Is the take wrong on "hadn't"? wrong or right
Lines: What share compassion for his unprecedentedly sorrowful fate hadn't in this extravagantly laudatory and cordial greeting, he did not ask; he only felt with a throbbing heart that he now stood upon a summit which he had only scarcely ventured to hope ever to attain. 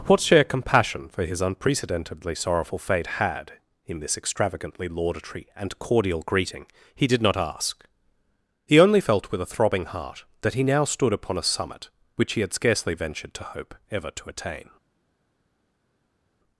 wrong